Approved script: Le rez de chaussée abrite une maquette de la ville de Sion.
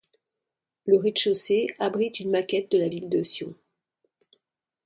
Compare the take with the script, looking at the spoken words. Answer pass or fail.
pass